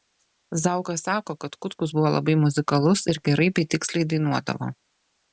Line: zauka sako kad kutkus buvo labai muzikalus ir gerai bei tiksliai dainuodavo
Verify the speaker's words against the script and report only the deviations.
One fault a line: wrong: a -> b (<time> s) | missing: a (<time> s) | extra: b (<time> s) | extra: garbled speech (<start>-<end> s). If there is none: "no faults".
no faults